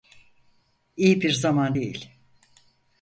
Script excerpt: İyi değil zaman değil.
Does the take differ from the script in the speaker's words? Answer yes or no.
yes